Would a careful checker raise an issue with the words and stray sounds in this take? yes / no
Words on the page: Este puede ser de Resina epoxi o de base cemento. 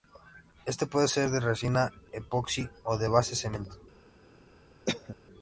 yes